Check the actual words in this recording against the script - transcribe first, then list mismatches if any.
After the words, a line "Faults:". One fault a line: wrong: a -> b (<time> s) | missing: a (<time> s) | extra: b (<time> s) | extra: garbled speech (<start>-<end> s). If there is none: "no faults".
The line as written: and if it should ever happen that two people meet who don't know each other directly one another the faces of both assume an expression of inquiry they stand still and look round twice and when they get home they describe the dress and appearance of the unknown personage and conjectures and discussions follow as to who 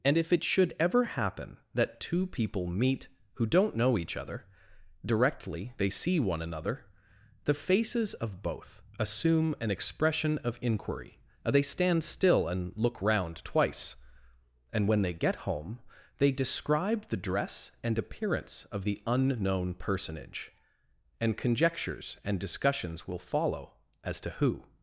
and if it should ever happen that two people meet who don't know each other directly they see one another the faces of both assume an expression of inquiry they stand still and look round twice and when they get home they describe the dress and appearance of the unknown personage and conjectures and discussions will follow as to who
Faults:
extra: they see (5.8 s)
extra: will (23.0 s)